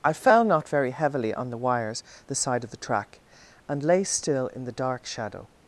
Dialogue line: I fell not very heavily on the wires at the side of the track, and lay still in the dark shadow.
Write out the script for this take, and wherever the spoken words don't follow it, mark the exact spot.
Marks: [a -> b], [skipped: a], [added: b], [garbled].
I fell not very heavily on the wires [skipped: at] the side of the track, and lay still in the dark shadow.